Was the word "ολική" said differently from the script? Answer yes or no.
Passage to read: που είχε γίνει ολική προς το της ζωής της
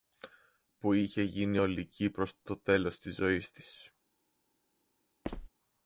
no